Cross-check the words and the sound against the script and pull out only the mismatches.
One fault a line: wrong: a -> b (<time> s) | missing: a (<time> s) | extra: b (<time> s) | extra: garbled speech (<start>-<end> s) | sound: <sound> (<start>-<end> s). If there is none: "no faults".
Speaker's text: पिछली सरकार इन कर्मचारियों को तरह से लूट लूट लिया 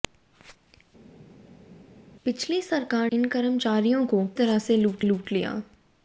no faults